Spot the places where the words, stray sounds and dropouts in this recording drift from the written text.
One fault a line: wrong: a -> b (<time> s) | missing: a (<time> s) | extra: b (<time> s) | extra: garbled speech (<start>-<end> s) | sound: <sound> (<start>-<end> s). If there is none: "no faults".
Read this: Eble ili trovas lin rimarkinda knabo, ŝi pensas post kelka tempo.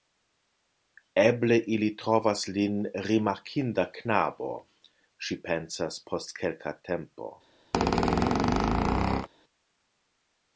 sound: squeak (7.7-9.3 s)